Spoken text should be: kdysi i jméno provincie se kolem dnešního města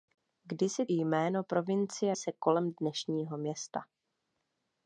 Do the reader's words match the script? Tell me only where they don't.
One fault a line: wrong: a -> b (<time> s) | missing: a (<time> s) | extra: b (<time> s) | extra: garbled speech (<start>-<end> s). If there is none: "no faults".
no faults